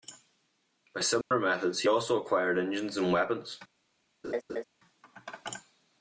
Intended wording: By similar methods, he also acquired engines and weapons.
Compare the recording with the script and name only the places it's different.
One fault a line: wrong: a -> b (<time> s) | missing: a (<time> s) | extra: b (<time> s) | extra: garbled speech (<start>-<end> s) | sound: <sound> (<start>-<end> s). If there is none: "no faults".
sound: dropout (1.2-1.3 s)
sound: laugh (4.2-4.6 s)